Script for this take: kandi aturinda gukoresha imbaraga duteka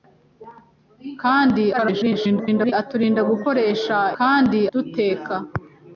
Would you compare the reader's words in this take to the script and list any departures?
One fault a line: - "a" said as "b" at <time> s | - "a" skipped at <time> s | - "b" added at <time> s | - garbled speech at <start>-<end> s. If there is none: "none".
- garbled speech at 1.7-2.7 s
- "imbaraga" said as "kandi" at 4.2 s